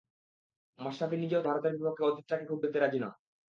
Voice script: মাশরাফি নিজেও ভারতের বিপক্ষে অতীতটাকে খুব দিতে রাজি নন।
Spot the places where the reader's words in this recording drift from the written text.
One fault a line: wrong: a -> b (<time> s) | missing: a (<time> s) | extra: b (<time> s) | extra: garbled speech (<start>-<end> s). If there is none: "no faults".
no faults